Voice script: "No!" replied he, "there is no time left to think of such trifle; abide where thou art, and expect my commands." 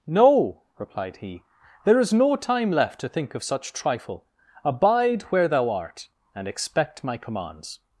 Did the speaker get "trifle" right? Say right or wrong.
right